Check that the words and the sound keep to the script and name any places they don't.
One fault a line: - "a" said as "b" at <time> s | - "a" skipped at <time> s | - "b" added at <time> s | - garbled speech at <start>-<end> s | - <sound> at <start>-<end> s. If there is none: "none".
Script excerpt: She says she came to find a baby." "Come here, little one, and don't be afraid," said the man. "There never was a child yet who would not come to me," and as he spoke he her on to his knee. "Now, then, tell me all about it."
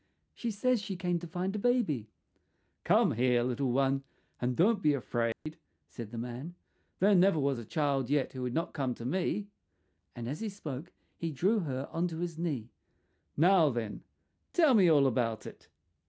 - dropout at 5.3-5.5 s
- "drew" added at 11.3 s